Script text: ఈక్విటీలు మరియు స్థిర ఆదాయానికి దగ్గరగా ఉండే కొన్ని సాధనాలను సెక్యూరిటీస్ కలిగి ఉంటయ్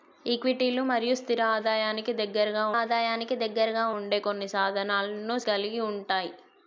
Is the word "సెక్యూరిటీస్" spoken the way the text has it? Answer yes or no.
no